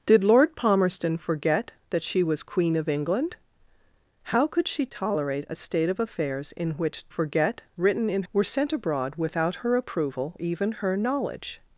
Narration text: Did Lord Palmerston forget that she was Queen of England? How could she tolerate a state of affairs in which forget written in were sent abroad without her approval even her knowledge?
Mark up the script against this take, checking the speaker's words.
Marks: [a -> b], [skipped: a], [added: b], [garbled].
Did Lord Palmerston forget that she was Queen of England? How could she tolerate a state of affairs in which forget written in were sent abroad without her approval even her knowledge?